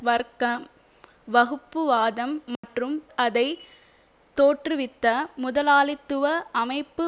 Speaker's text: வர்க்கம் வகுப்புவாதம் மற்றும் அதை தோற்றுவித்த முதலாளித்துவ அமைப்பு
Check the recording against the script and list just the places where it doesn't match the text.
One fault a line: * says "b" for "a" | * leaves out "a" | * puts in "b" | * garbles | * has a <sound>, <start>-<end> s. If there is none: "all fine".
* has a dropout, 2.6-2.6 s